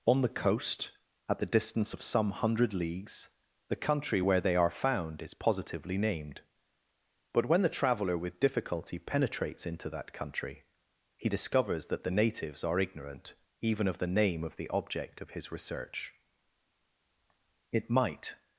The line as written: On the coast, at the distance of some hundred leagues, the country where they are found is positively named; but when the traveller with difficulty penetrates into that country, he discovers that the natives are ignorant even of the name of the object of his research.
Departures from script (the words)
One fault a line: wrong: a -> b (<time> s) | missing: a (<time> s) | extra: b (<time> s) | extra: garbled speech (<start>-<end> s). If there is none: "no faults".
extra: It might (17.7 s)